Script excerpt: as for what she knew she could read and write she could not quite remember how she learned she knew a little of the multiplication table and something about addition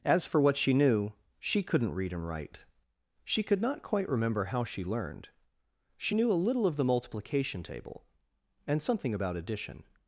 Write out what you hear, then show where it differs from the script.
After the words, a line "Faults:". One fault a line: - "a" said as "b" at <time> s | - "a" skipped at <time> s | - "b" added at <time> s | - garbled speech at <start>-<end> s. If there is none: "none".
as for what she knew she couldn't read and write she could not quite remember how she learned she knew a little of the multiplication table and something about addition
Faults:
- "could" said as "couldn't" at 1.6 s